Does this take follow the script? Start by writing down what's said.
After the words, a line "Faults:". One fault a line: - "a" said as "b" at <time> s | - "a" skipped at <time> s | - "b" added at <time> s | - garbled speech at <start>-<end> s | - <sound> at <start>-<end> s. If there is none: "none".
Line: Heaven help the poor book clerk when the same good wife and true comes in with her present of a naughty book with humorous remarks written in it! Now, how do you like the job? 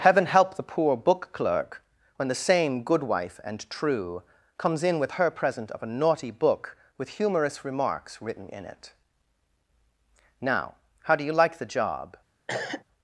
Heaven help the poor book clerk when the same good wife and true comes in with her present of a naughty book with humorous remarks written in it! Now, how do you like the job?
Faults:
- cough at 12.5-12.8 s